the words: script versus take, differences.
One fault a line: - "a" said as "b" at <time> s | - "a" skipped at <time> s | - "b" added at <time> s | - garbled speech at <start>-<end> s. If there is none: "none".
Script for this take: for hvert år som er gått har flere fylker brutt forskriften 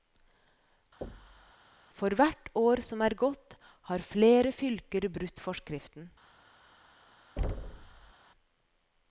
none